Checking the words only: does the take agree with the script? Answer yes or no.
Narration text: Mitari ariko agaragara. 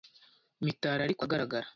yes